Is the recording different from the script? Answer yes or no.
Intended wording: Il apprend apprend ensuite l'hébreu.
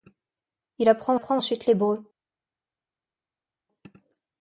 no